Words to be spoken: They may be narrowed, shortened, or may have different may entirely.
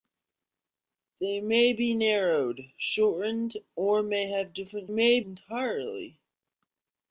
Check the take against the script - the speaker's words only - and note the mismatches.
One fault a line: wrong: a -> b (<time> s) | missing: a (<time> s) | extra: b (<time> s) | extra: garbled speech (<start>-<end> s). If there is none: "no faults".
no faults